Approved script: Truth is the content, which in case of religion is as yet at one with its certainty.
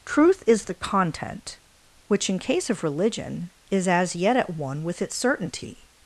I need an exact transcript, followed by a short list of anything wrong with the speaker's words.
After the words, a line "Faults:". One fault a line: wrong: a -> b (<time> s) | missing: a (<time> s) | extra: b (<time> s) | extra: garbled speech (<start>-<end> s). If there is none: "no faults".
Truth is the content, which in case of religion is as yet at one with its certainty.
Faults:
no faults